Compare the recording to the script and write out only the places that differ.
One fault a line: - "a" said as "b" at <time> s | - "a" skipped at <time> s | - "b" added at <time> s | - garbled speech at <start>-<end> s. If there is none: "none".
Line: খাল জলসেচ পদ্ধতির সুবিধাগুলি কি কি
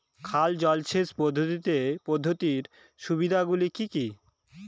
none